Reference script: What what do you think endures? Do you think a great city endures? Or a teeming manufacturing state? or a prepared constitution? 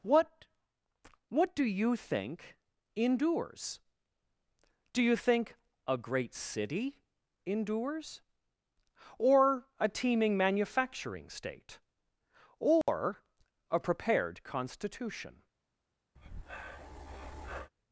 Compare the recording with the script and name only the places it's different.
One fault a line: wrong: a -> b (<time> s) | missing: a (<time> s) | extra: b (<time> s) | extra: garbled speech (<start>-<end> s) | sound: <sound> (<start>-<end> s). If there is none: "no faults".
sound: dropout (12.8-12.9 s)
sound: breath (16.2-17.7 s)